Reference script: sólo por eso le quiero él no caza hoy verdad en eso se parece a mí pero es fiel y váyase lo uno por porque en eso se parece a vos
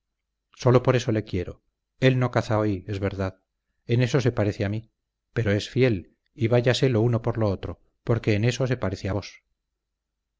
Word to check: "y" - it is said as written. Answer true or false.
true